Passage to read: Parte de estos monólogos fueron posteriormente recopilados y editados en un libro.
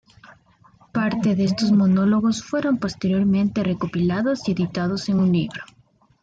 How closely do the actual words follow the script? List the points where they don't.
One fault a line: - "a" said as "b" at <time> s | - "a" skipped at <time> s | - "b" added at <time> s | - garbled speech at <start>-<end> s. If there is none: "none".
none